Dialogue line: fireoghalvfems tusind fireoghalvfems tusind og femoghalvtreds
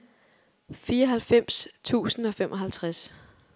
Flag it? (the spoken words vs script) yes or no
yes